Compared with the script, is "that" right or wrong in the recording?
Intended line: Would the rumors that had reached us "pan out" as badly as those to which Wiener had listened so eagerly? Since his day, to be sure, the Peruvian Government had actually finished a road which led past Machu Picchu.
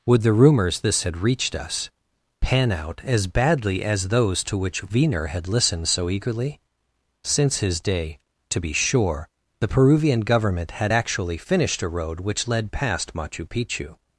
wrong